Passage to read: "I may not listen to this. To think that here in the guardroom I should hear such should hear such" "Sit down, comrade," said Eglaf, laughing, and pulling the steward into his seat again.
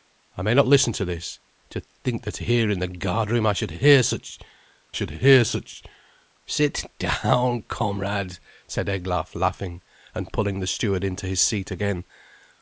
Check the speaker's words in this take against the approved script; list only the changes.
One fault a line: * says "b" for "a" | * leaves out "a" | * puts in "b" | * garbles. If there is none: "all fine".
all fine